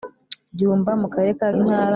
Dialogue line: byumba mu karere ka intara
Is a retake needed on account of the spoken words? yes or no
no